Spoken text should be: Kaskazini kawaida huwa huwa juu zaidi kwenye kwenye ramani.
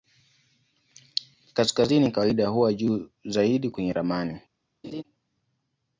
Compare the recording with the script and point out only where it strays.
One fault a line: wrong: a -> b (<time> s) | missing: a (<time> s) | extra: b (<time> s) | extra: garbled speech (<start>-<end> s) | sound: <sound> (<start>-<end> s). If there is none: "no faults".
missing: huwa (2.7 s)
missing: kwenye (3.9 s)
sound: laugh (4.8-5.0 s)